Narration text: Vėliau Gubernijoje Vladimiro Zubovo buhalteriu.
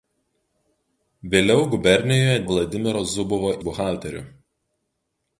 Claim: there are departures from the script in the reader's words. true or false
false